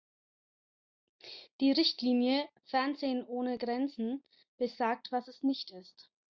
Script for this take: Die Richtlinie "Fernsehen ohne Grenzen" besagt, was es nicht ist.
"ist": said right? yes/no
yes